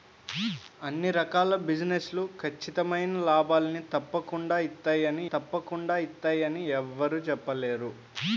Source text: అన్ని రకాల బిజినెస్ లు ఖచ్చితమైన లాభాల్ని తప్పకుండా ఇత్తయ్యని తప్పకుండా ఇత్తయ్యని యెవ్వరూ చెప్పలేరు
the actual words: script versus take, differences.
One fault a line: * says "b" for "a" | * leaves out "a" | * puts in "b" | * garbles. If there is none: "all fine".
all fine